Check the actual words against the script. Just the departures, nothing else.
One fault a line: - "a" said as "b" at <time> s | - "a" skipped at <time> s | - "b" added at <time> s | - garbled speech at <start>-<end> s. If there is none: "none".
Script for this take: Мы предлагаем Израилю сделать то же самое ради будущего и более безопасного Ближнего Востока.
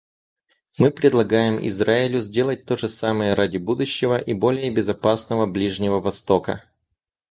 none